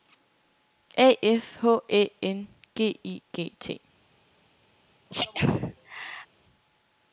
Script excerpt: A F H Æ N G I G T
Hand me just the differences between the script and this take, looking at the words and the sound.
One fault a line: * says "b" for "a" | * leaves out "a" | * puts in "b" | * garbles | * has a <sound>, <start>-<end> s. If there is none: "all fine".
* has a sneeze, 5.1-6.3 s